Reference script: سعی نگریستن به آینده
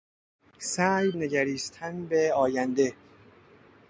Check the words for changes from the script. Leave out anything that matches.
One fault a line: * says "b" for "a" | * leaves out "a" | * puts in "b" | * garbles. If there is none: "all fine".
all fine